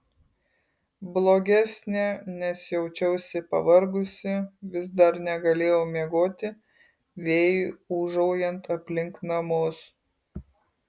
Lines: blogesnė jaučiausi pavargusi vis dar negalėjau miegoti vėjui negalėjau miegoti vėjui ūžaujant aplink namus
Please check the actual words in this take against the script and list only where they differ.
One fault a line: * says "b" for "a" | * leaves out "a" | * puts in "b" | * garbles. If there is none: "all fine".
* puts in "nes"
* leaves out "negalėjau miegoti vėjui"